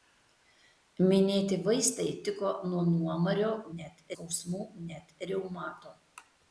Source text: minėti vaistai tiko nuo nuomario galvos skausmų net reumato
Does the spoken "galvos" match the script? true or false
false